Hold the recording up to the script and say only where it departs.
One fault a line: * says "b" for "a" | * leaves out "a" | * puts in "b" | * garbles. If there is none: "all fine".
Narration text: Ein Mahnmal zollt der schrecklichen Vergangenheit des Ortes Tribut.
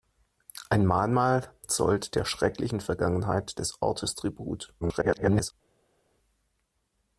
* garbles